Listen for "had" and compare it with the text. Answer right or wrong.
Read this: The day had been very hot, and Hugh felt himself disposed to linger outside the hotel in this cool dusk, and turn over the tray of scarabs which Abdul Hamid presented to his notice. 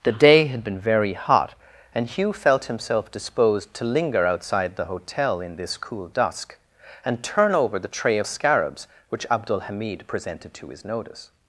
right